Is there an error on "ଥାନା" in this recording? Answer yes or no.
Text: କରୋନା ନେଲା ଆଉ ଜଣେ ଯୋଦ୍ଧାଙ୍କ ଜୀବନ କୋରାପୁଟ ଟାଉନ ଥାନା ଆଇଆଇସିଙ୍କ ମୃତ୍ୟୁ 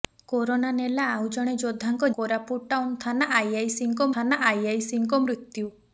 no